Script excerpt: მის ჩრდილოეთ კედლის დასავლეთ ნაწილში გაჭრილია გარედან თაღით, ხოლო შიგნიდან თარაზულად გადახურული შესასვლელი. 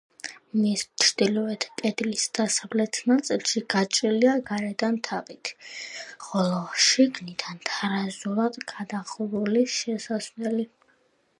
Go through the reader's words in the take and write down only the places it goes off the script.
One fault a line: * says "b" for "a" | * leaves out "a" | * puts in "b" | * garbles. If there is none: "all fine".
all fine